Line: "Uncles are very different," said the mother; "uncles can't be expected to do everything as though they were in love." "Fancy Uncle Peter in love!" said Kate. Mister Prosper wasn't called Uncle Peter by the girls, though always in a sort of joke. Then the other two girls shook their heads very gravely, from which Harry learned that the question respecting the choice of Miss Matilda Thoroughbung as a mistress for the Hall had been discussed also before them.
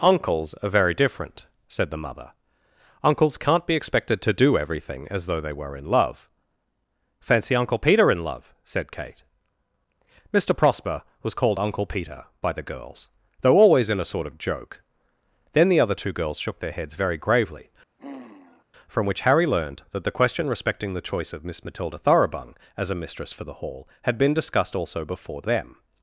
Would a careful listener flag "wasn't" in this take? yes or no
yes